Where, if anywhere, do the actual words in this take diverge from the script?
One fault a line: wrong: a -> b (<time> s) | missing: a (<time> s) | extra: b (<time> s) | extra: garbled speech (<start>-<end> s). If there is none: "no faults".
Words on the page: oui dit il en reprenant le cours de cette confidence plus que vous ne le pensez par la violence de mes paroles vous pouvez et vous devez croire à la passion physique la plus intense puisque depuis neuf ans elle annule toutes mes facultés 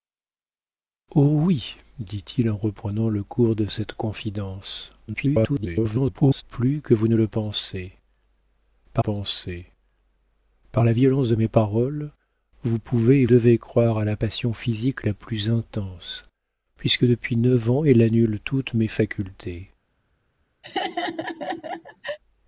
extra: garbled speech (5.1-6.4 s)
extra: pensez par (9.0 s)
missing: vous (13.3 s)